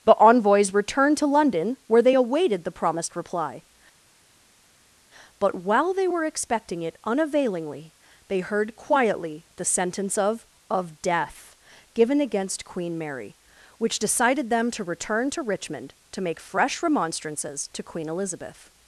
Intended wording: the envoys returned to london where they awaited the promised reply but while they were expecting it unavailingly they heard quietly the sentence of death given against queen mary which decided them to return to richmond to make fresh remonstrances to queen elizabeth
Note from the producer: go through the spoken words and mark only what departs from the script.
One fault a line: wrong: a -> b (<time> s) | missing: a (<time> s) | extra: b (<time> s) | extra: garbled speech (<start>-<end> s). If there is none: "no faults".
extra: of (10.7 s)